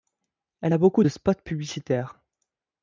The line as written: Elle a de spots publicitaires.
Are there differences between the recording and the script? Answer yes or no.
yes